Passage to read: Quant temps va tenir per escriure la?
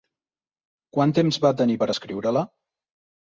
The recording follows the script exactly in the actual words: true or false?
true